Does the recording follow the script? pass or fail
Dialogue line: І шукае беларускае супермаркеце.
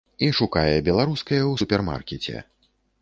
fail